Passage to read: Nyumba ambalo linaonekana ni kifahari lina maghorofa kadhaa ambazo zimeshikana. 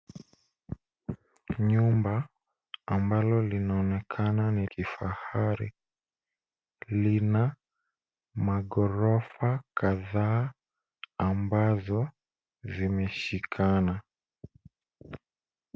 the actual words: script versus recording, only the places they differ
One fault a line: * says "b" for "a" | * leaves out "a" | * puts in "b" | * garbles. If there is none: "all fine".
all fine